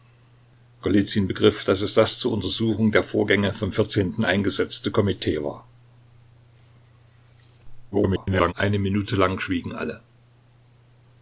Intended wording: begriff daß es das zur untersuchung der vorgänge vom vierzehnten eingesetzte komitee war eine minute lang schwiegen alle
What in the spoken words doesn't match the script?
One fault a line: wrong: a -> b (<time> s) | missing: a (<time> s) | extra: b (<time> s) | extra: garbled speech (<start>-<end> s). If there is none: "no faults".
extra: garbled speech (7.9-8.5 s)